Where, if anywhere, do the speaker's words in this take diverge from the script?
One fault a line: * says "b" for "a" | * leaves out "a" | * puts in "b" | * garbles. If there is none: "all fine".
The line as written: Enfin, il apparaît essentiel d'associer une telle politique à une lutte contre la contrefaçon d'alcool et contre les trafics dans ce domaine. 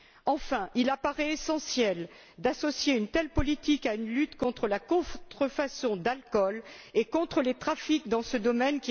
all fine